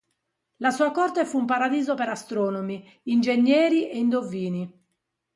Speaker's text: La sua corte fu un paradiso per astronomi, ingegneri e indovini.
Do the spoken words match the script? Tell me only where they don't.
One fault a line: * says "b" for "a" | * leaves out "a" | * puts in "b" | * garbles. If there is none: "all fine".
all fine